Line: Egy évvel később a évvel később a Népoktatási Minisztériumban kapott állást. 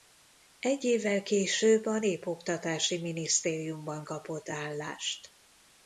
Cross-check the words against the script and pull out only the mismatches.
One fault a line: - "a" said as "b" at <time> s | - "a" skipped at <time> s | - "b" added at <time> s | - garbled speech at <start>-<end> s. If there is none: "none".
- "évvel később a" skipped at 2.0 s